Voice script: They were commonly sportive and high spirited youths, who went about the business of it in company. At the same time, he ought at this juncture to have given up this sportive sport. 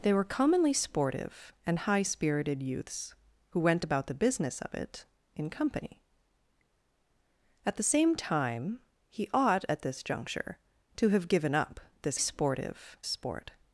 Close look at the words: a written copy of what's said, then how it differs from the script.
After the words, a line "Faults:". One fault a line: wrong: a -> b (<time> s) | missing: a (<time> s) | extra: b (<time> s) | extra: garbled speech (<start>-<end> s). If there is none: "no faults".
They were commonly sportive and high spirited youths, who went about the business of it in company. At the same time, he ought at this juncture to have given up this sportive sport.
Faults:
no faults